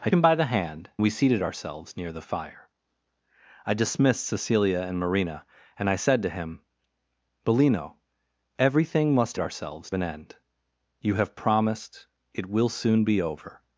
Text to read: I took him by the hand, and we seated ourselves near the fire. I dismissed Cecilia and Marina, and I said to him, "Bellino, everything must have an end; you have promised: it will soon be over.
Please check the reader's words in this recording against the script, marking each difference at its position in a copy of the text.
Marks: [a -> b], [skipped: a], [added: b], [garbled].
I [skipped: took] him by the hand, [skipped: and] we seated ourselves near the fire. I dismissed Cecilia and Marina, and I said to him, "Bellino, everything must [have -> ourselves] an end; you have promised: it will soon be over.